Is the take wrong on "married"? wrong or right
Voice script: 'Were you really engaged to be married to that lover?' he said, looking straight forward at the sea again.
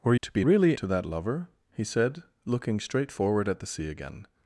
wrong